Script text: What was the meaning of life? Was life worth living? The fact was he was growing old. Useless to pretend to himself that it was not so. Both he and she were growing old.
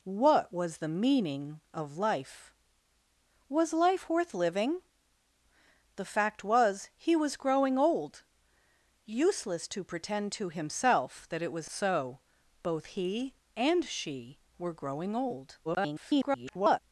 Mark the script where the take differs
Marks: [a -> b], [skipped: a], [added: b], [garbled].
What was the meaning of life? Was life worth living? The fact was he was growing old. Useless to pretend to himself that it was [skipped: not] so. Both he and she were growing old. [garbled]